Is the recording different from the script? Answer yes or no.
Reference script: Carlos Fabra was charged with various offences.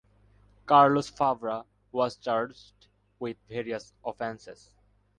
no